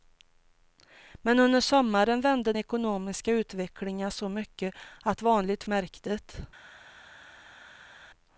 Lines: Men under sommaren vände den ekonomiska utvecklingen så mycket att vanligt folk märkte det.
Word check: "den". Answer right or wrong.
wrong